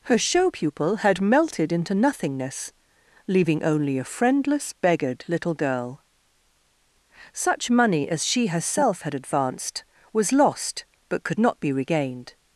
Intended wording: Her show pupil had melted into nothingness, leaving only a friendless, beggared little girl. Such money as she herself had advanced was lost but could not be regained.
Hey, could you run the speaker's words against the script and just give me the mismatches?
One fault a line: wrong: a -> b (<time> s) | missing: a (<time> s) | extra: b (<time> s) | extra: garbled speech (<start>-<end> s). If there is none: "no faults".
no faults